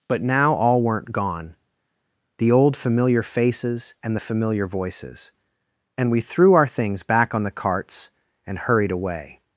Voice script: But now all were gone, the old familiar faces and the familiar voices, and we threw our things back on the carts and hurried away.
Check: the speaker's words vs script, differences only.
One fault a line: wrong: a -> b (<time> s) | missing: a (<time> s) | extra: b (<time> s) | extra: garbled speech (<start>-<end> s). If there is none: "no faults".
wrong: were -> weren't (0.8 s)